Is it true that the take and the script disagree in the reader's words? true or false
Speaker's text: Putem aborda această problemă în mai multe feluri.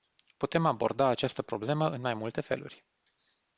false